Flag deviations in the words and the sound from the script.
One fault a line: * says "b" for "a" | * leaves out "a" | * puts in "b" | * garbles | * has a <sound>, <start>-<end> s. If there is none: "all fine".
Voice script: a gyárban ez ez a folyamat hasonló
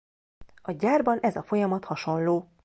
* leaves out "ez"